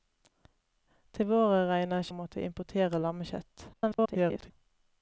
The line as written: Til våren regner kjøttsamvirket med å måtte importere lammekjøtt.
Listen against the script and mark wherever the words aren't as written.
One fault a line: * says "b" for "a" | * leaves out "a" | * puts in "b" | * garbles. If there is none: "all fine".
* leaves out "kjøttsamvirket med"
* garbles